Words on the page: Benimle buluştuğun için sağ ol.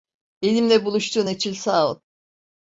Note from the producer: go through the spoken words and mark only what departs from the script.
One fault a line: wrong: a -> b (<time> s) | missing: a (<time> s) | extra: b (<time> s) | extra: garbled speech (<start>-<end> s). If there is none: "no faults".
no faults